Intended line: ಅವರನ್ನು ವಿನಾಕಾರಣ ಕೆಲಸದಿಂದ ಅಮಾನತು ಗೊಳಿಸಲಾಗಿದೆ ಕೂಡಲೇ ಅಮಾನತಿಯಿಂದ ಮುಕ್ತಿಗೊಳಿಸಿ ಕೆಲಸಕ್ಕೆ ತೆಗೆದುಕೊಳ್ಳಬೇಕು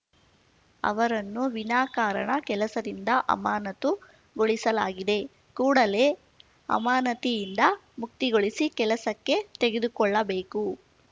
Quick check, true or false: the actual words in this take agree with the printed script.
true